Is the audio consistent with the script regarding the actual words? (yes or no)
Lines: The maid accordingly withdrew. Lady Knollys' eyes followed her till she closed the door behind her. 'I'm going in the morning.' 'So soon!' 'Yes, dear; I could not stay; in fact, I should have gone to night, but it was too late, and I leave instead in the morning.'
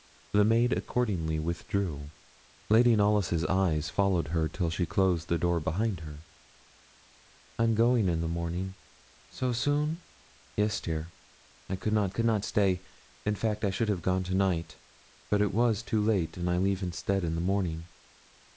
no